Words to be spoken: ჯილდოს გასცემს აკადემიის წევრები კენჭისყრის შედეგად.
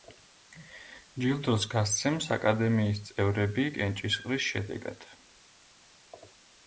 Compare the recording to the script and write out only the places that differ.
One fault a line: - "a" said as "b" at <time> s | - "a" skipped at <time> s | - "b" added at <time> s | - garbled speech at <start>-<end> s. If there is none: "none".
none